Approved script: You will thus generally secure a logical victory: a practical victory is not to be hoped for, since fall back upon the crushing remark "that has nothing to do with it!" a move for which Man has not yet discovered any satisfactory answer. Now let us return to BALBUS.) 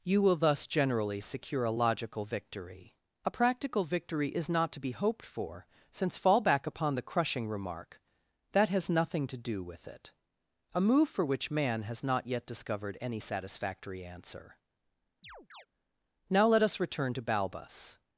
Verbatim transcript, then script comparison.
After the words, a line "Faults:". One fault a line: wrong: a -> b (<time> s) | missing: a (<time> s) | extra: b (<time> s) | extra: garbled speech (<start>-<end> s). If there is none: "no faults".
You will thus generally secure a logical victory: a practical victory is not to be hoped for, since fall back upon the crushing remark "that has nothing to do with it!" a move for which Man has not yet discovered any satisfactory answer. Now let us return to BALBUS.)
Faults:
no faults